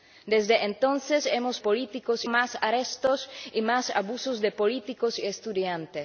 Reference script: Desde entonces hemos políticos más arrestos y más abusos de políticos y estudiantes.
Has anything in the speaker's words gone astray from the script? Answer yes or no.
no